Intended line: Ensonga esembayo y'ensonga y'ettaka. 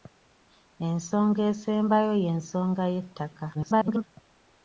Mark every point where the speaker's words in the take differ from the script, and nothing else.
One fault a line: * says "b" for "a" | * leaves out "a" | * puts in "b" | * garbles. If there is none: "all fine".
* garbles